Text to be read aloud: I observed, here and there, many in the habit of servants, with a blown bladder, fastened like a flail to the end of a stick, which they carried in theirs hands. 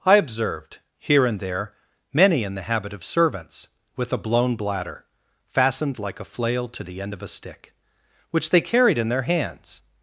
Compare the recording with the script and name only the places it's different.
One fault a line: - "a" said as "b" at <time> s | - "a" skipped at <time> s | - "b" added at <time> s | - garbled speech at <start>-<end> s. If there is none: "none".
- "theirs" said as "their" at 9.1 s